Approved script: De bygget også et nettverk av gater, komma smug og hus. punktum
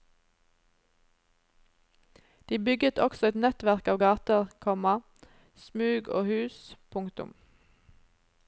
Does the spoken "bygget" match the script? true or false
true